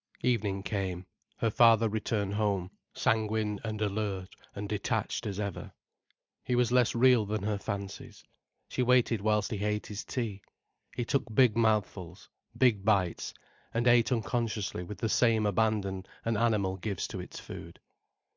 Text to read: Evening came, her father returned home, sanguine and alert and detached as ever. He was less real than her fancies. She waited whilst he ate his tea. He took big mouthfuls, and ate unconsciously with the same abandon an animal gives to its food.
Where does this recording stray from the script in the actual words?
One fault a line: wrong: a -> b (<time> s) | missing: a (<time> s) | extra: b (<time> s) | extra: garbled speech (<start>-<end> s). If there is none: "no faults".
extra: big bites (12.6 s)